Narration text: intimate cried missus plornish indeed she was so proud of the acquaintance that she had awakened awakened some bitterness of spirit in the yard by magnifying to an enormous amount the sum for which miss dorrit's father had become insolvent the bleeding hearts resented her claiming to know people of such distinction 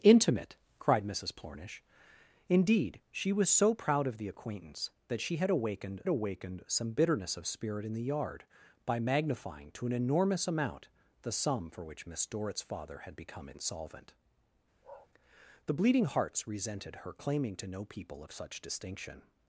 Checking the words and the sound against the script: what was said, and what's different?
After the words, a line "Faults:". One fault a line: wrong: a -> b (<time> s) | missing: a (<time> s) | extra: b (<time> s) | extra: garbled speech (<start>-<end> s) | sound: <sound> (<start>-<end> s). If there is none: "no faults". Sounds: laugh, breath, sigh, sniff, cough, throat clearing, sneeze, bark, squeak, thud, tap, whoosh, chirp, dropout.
intimate cried missus plornish indeed she was so proud of the acquaintance that she had awakened awakened some bitterness of spirit in the yard by magnifying to an enormous amount the sum for which miss dorrit's father had become insolvent the bleeding hearts resented her claiming to know people of such distinction
Faults:
sound: bark (14.8-15.1 s)